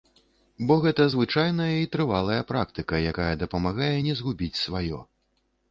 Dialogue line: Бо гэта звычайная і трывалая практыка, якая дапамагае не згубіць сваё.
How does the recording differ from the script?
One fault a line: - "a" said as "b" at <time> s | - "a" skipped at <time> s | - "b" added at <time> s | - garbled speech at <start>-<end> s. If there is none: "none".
none